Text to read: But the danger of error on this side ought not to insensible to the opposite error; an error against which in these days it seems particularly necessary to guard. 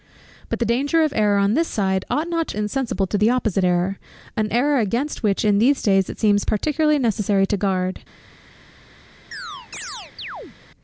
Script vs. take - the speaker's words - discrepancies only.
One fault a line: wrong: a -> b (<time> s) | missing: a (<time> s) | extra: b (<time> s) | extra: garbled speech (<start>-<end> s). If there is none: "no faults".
no faults